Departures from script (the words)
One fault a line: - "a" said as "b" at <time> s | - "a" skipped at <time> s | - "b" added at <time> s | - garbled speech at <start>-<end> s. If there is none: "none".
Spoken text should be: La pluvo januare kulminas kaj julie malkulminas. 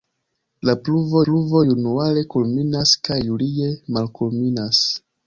- "pluvo" added at 1.3 s